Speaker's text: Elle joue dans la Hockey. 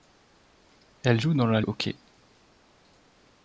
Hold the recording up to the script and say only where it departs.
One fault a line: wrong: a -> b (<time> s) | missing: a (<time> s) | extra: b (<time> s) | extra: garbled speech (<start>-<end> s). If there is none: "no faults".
no faults